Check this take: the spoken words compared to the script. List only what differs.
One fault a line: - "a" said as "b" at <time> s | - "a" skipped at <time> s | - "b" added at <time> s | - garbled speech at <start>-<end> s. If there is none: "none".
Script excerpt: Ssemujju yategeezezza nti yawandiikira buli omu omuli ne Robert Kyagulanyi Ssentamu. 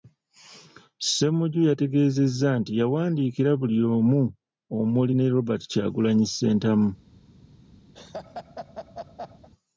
none